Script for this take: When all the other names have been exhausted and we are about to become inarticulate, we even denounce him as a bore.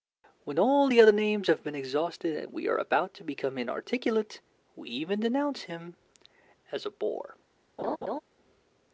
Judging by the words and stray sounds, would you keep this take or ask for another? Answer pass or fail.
fail